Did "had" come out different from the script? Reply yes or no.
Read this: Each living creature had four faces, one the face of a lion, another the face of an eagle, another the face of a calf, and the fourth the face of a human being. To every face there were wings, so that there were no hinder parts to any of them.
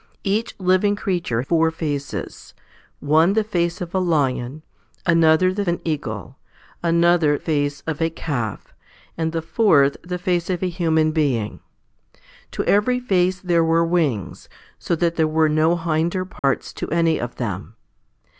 yes